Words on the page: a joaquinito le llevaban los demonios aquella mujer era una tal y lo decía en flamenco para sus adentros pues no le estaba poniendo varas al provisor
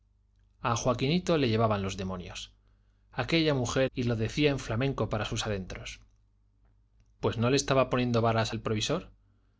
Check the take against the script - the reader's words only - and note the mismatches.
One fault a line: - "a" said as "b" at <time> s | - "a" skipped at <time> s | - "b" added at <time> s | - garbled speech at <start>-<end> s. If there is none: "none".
- "era una tal" skipped at 3.9 s